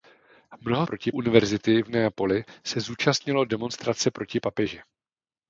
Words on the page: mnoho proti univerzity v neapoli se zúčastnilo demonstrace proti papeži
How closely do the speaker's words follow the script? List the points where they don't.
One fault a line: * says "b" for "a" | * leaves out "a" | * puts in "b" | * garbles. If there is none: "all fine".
all fine